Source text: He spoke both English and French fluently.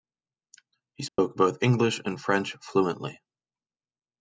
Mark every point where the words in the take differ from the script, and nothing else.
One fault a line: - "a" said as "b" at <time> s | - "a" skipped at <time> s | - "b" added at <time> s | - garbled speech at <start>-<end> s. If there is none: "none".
none